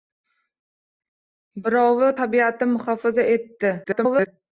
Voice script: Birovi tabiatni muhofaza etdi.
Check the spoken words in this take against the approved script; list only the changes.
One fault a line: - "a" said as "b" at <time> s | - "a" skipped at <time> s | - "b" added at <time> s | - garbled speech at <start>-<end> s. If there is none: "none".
- garbled speech at 3.8-4.3 s